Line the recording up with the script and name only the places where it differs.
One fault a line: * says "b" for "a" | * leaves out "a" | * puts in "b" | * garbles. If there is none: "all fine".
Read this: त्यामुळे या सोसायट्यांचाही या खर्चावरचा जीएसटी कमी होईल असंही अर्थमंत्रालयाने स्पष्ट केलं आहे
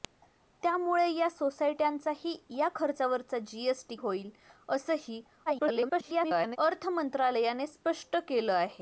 * leaves out "कमी"
* garbles